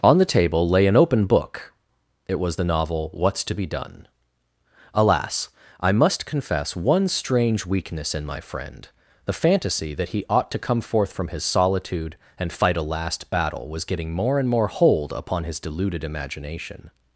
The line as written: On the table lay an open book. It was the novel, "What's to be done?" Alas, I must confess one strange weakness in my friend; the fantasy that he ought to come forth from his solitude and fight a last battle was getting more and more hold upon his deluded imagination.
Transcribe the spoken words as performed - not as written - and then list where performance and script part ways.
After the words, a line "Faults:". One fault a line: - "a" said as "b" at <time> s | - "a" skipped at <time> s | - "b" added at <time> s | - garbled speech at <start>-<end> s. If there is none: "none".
On the table lay an open book. It was the novel, "What's to be done?" Alas, I must confess one strange weakness in my friend; the fantasy that he ought to come forth from his solitude and fight a last battle was getting more and more hold upon his deluded imagination.
Faults:
none